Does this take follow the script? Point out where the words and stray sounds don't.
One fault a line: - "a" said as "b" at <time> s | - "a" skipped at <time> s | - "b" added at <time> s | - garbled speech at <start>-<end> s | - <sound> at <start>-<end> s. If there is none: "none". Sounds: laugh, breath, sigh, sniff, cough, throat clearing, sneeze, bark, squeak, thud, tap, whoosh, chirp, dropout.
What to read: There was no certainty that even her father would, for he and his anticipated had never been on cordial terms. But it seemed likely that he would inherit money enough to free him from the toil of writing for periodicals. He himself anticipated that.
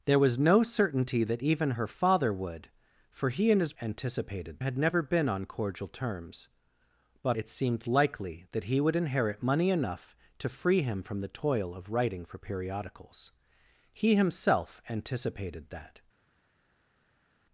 none